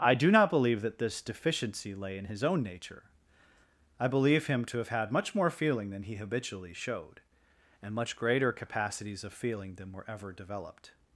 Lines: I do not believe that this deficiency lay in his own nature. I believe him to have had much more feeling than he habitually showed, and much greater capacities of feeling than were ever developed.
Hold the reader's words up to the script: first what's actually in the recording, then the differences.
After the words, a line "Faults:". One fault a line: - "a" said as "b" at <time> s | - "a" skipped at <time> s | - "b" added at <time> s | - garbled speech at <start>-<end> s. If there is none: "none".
I do not believe that this deficiency lay in his own nature. I believe him to have had much more feeling than he habitually showed, and much greater capacities of feeling than were ever developed.
Faults:
none